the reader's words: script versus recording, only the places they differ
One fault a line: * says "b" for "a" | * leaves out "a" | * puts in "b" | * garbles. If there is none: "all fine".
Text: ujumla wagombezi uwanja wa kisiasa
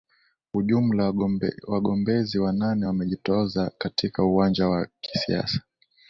* puts in "wanane wamejitoza katika"